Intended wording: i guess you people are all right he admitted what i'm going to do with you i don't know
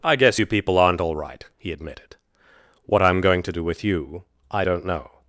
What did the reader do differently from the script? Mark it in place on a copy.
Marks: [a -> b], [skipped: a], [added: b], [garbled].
i guess you people [are -> aren't] all right he admitted what i'm going to do with you i don't know